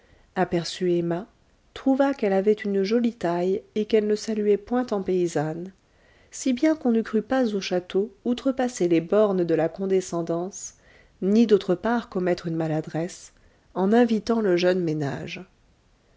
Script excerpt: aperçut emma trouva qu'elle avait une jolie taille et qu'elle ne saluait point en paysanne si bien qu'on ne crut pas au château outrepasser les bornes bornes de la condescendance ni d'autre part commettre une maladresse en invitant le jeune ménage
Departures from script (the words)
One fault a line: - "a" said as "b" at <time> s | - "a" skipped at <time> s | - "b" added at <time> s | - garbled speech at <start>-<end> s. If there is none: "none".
- "bornes" skipped at 9.4 s